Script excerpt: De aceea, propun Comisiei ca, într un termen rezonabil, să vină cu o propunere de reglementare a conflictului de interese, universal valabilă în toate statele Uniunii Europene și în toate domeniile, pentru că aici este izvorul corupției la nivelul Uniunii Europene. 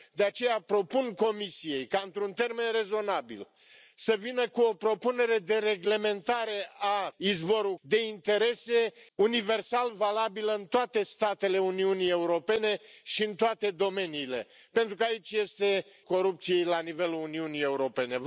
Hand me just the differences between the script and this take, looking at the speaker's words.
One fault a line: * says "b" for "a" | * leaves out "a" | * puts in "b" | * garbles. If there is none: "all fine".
* says "izvorul" for "conflictului"
* leaves out "izvorul"